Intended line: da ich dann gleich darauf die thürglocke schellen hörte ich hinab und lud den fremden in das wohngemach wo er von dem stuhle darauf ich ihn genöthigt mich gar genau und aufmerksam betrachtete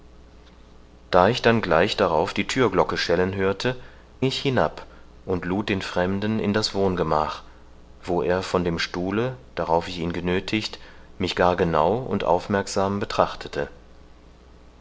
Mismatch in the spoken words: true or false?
false